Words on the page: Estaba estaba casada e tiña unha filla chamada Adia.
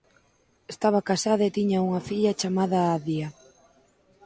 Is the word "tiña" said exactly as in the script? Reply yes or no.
yes